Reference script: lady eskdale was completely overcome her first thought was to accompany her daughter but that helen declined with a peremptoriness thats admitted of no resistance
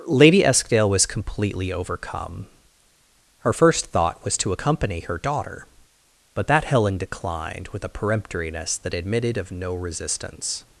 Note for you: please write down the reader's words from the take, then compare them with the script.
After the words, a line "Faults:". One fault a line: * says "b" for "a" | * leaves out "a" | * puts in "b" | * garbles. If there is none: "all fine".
lady eskdale was completely overcome her first thought was to accompany her daughter but that helen declined with a peremptoriness that admitted of no resistance
Faults:
* says "that" for "thats"